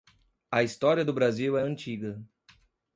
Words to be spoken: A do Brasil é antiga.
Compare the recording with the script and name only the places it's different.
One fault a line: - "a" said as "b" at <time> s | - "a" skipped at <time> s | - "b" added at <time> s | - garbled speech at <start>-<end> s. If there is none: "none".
- "história" added at 0.6 s